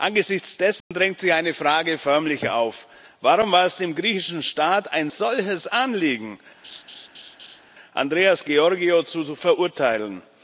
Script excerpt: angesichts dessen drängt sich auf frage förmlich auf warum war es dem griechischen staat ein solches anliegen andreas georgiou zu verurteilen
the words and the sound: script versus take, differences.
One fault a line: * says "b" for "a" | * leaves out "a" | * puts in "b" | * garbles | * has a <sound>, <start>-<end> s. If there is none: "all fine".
* has a dropout, 0.8-0.9 s
* says "eine" for "auf"
* has a laugh, 6.6-7.6 s